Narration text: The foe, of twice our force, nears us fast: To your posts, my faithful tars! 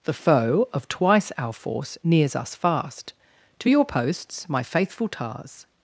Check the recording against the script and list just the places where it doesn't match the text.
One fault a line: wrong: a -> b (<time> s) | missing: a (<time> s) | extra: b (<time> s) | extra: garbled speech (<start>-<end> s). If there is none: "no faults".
no faults